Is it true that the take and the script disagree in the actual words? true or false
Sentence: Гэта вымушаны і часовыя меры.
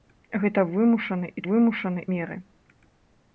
true